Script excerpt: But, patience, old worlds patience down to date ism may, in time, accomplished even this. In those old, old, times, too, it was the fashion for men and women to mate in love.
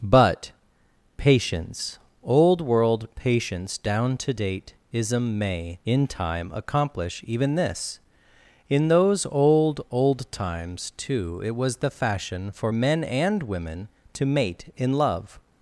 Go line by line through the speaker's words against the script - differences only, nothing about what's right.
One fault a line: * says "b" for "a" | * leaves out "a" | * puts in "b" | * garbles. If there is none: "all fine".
* says "world" for "worlds"
* says "accomplish" for "accomplished"